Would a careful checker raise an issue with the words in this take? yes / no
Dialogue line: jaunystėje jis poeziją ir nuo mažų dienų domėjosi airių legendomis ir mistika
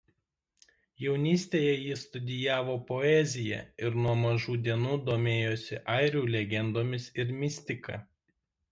yes